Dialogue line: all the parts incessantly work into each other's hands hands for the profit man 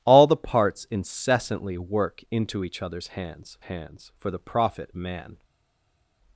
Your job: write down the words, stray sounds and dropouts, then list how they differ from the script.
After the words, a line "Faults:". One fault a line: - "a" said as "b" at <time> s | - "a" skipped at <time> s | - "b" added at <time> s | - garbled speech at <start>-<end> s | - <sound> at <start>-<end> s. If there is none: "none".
all the parts incessantly work into each other's hands hands for the profit man
Faults:
none